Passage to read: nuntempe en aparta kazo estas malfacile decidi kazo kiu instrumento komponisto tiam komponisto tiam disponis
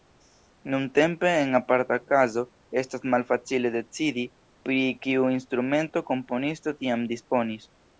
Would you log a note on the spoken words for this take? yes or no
yes